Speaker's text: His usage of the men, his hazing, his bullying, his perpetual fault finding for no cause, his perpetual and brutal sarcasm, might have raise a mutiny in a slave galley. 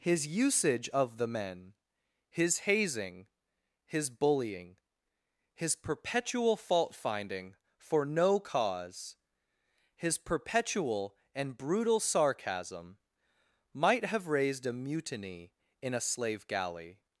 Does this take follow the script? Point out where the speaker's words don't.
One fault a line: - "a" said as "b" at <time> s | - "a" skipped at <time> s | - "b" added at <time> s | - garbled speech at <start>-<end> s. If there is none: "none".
- "raise" said as "raised" at 14.2 s